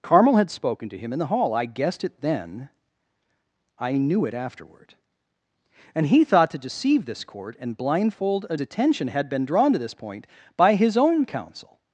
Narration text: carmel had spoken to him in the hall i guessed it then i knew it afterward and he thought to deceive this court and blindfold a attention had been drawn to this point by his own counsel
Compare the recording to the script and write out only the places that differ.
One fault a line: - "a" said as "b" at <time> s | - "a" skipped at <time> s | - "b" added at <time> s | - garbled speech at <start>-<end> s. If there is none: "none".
none